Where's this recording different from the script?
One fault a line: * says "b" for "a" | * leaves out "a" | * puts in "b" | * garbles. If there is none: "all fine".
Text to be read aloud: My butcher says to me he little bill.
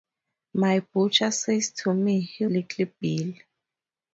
all fine